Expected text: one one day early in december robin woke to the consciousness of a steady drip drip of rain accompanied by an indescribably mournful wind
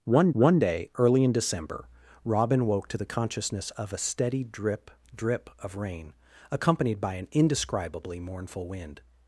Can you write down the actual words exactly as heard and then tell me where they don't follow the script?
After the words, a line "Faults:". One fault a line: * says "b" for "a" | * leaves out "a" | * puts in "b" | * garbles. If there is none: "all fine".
one one day early in december robin woke to the consciousness of a steady drip drip of rain accompanied by an indescribably mournful wind
Faults:
all fine